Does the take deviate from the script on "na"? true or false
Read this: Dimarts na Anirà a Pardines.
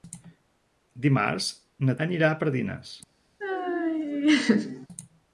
false